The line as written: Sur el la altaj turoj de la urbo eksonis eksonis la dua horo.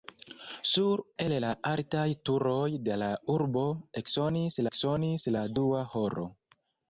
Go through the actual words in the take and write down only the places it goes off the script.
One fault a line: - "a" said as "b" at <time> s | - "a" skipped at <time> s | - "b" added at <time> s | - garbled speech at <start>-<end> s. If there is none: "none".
none